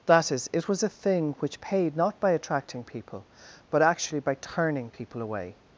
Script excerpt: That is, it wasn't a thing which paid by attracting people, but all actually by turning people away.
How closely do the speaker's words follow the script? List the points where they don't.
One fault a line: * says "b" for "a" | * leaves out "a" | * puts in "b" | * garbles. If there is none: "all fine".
* says "was" for "wasn't"
* puts in "not"
* leaves out "all"